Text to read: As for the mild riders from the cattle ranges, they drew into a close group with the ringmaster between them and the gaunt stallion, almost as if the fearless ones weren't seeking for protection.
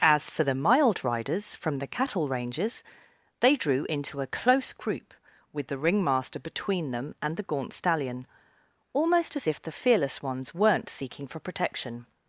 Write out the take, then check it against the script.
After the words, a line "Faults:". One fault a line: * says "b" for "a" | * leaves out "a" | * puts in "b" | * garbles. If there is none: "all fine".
As for the mild riders from the cattle ranges, they drew into a close group with the ringmaster between them and the gaunt stallion, almost as if the fearless ones weren't seeking for protection.
Faults:
all fine